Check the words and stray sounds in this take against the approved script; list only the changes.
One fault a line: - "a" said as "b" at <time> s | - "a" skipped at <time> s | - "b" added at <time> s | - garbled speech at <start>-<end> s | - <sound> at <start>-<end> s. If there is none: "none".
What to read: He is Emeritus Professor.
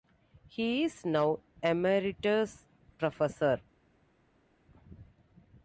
- "now" added at 1.1 s